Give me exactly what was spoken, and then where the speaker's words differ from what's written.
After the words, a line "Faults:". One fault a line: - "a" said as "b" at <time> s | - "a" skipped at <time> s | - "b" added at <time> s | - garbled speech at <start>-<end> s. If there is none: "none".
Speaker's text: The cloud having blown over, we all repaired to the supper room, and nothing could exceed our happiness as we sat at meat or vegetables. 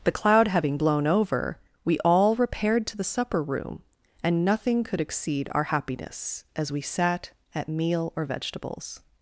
The cloud having blown over, we all repaired to the supper room, and nothing could exceed our happiness as we sat at meal or vegetables.
Faults:
- "meat" said as "meal" at 7.7 s